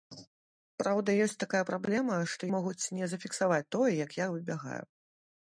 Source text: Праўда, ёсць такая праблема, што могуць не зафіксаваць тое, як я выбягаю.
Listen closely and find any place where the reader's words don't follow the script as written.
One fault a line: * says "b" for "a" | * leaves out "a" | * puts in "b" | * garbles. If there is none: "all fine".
all fine